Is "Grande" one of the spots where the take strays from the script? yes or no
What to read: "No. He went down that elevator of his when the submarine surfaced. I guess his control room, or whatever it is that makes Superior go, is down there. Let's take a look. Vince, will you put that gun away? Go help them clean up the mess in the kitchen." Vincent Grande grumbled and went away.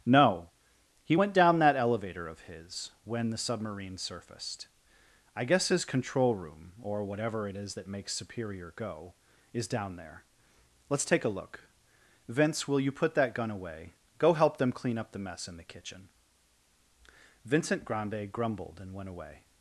no